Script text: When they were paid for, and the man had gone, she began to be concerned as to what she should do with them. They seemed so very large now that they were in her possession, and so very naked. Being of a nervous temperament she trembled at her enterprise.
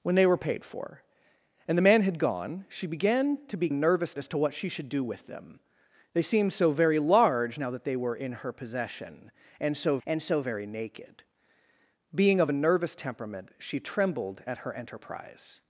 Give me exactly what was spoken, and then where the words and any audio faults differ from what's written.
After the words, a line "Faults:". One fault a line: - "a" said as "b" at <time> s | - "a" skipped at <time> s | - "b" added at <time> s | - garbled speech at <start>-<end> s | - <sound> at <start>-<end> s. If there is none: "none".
When they were paid for, and the man had gone, she began to be nervous as to what she should do with them. They seemed so very large now that they were in her possession, and so and so very naked. Being of a nervous temperament she trembled at her enterprise.
Faults:
- "concerned" said as "nervous" at 3.7 s
- "and so" added at 10.0 s